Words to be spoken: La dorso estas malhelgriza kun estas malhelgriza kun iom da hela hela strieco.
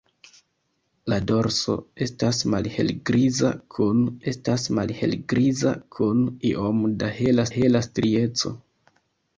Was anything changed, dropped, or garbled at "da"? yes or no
no